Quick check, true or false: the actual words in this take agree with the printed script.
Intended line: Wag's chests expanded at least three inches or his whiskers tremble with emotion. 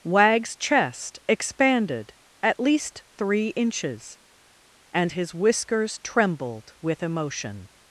false